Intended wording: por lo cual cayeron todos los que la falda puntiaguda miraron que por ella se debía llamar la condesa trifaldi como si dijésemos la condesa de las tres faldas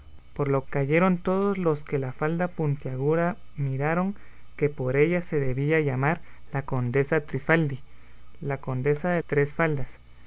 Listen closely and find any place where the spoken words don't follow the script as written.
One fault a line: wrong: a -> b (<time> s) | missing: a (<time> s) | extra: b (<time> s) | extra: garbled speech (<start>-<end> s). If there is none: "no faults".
missing: cual (0.6 s)
missing: como si dijésemos (7.8 s)
missing: las (9.2 s)